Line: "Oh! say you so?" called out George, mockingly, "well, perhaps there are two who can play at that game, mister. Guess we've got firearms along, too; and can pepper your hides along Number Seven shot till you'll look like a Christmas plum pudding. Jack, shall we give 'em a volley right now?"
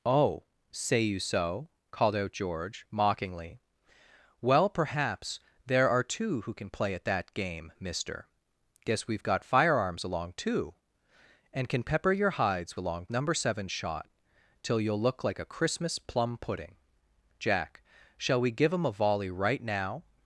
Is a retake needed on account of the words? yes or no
no